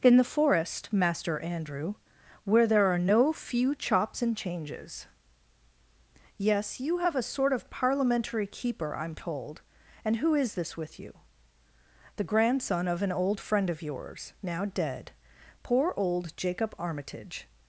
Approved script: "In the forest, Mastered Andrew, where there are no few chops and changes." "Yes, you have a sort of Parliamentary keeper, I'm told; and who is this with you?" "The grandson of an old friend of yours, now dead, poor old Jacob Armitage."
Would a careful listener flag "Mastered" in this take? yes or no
yes